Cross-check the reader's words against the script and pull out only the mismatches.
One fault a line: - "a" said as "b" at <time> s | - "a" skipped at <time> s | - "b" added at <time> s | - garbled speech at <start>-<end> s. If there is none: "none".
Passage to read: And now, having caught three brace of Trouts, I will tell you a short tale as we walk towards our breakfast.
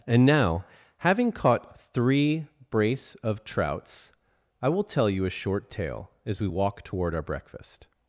- "towards" said as "toward" at 6.8 s